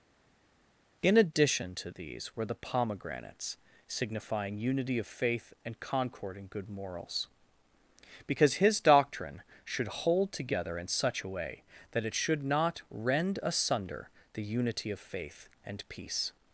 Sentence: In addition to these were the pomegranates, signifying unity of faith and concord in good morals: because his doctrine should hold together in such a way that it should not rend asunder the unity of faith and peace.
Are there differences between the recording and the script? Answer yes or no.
no